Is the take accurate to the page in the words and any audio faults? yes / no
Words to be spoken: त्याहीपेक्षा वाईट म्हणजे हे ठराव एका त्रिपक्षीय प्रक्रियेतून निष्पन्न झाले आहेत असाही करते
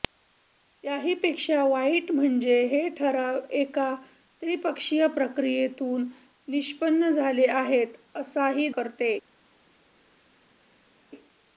yes